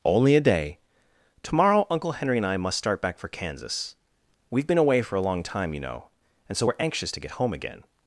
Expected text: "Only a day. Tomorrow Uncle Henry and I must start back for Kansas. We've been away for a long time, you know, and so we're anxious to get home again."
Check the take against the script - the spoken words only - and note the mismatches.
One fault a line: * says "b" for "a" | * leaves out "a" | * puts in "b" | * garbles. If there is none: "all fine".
all fine